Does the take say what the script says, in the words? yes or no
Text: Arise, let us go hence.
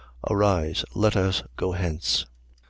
yes